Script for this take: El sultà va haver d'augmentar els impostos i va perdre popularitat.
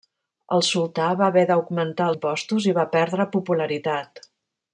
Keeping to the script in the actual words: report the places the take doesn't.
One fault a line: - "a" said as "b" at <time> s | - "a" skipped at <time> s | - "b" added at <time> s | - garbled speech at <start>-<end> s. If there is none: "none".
- "els" skipped at 2.1 s